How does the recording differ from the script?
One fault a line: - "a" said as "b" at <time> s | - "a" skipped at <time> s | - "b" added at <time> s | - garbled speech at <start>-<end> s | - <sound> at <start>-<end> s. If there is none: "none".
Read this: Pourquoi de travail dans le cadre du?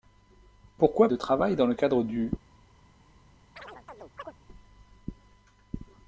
- chirp at 3.6-4.3 s